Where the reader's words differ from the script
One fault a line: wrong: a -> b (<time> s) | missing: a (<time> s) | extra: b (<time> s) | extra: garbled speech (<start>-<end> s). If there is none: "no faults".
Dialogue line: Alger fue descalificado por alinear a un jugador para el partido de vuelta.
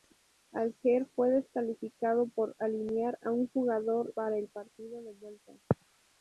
no faults